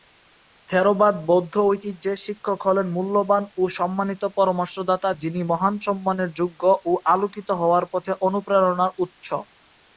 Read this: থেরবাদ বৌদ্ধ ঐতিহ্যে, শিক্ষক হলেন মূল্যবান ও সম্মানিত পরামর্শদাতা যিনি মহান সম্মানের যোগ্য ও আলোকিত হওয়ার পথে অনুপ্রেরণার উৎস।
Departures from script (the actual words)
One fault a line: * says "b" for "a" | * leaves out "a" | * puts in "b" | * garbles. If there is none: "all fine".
all fine